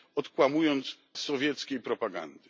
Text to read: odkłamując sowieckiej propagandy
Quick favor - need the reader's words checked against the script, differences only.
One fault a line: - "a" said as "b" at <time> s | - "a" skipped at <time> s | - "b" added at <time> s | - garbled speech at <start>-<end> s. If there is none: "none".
none